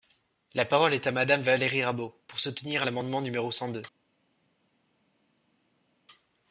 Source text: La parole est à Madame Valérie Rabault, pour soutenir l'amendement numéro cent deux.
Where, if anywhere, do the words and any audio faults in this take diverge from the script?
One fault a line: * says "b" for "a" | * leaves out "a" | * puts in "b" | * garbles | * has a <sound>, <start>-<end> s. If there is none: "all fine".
all fine